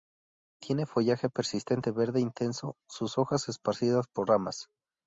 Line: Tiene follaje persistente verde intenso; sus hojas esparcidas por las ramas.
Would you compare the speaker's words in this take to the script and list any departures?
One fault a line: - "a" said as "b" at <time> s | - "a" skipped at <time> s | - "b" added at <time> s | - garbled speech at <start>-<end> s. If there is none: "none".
- "las" skipped at 4.3 s